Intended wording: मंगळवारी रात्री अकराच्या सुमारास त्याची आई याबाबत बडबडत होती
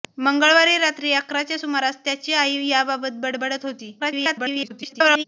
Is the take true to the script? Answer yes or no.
no